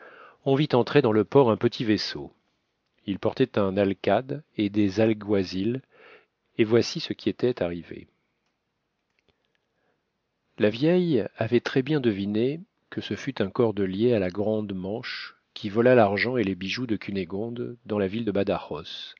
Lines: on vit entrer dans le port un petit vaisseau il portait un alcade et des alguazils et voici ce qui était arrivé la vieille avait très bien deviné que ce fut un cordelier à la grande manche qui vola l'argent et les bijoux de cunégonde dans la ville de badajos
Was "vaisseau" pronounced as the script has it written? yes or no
yes